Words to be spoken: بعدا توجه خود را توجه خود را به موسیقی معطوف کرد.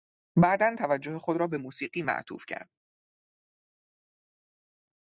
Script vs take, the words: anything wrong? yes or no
yes